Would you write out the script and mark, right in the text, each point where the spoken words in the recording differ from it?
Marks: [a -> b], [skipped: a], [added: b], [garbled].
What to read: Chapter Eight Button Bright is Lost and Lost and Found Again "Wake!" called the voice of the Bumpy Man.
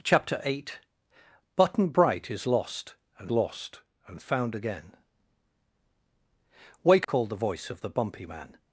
Chapter Eight Button Bright is Lost and Lost and Found Again "Wake!" called the voice of the Bumpy Man.